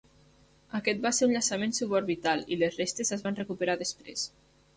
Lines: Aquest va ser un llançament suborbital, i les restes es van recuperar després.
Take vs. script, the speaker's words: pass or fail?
pass